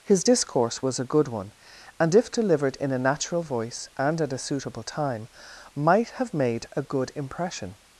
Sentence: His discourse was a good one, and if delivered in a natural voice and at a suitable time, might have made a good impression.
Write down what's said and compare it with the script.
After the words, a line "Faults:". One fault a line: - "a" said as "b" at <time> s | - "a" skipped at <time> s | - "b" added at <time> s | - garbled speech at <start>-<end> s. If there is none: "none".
His discourse was a good one, and if delivered in a natural voice and at a suitable time, might have made a good impression.
Faults:
none